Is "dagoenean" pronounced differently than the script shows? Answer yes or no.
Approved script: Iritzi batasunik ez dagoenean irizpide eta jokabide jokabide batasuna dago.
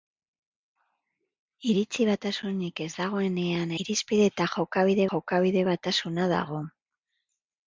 no